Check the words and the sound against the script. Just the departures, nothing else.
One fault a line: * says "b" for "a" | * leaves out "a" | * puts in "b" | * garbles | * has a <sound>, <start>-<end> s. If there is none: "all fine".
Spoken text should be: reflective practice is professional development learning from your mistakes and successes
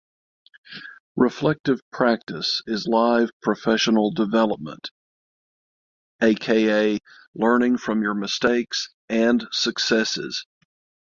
* puts in "live"
* puts in "aka"